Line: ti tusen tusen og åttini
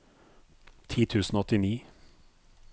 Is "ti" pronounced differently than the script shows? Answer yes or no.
no